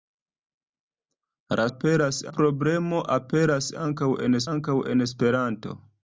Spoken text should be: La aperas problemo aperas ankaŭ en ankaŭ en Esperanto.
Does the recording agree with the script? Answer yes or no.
yes